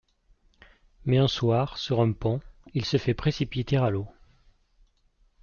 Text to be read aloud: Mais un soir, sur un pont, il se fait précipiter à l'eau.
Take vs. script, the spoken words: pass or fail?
pass